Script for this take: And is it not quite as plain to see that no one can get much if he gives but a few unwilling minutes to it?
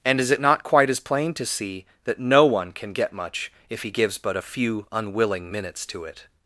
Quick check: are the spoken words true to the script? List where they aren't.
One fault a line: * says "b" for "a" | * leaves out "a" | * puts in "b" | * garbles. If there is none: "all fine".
all fine